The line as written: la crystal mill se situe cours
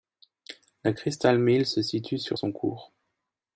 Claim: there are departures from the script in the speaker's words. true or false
true